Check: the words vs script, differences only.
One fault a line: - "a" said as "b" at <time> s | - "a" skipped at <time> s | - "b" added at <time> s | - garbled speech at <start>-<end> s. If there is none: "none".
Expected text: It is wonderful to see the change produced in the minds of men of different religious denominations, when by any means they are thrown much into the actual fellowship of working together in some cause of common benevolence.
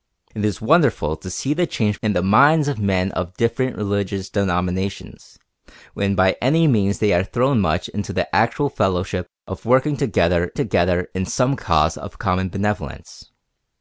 - "produced" skipped at 2.0 s
- "together" added at 10.5 s